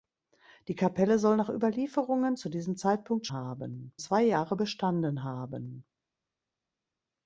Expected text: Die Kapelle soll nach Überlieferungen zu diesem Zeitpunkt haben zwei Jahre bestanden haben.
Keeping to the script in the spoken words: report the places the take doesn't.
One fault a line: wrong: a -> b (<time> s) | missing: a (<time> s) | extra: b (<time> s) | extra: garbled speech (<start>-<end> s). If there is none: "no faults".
no faults